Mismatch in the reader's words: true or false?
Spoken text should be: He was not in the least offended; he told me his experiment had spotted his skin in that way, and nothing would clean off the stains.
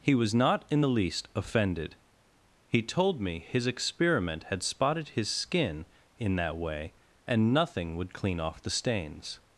false